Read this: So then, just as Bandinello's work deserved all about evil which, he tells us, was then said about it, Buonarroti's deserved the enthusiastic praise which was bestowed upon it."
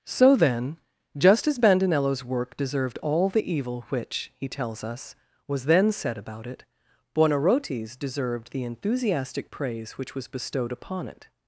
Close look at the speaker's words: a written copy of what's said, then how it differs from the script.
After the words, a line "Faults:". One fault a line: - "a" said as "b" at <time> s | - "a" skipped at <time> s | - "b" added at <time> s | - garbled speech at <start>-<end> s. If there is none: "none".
So then, just as Bandinello's work deserved all the evil which, he tells us, was then said about it, Buonarroti's deserved the enthusiastic praise which was bestowed upon it."
Faults:
- "about" said as "the" at 3.3 s